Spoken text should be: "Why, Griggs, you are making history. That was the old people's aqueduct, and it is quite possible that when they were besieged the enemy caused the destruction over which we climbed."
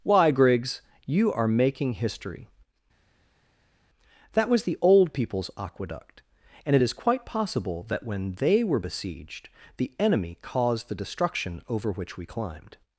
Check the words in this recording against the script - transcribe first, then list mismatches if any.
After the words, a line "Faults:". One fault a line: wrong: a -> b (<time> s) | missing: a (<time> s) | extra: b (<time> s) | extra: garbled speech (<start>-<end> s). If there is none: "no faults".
"Why, Griggs, you are making history. That was the old people's aqueduct, and it is quite possible that when they were besieged the enemy caused the destruction over which we climbed."
Faults:
no faults